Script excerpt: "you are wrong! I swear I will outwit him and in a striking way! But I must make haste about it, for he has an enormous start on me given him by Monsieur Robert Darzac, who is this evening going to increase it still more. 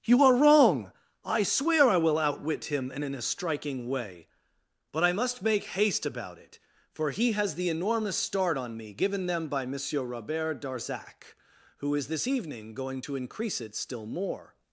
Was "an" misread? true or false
true